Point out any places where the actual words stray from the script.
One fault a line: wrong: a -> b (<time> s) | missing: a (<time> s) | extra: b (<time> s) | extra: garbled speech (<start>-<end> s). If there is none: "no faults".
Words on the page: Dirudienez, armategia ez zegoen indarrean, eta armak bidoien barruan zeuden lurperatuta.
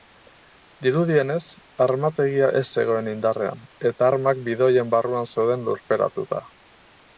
no faults